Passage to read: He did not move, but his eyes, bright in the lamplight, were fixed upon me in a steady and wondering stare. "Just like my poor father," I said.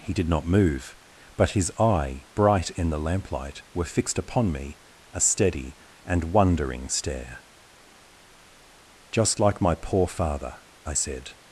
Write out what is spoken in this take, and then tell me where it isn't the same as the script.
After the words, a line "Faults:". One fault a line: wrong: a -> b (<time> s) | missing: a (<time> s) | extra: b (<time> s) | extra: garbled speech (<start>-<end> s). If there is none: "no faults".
He did not move, but his eye, bright in the lamplight, were fixed upon me a steady and wondering stare. "Just like my poor father," I said.
Faults:
wrong: eyes -> eye (1.8 s)
missing: in (4.8 s)